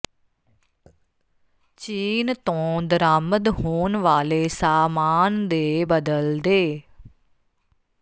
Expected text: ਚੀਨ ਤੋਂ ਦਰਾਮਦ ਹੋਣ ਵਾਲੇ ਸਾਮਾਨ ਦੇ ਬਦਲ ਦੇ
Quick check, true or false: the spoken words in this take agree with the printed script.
true